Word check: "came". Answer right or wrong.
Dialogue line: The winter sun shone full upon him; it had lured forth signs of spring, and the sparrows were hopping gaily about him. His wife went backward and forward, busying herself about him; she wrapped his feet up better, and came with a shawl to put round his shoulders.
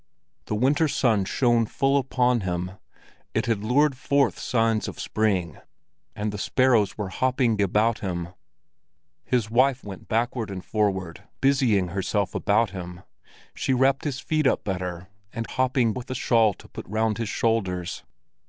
wrong